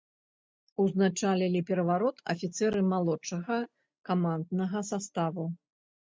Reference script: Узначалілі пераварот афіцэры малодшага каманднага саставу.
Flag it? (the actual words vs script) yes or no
no